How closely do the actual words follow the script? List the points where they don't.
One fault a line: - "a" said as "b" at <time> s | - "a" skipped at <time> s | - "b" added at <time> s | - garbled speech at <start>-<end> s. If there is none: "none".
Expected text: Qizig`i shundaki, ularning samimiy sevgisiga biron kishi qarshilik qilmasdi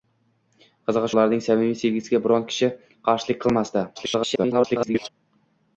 - "shundaki" skipped at 1.1 s
- garbled speech at 3.9-5.1 s